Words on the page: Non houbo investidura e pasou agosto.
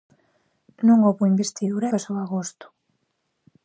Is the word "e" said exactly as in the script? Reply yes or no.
no